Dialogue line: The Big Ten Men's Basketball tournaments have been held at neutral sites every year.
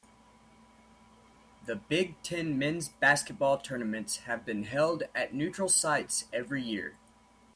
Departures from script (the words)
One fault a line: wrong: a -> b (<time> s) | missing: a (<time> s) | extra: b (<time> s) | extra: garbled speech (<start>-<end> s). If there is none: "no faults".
no faults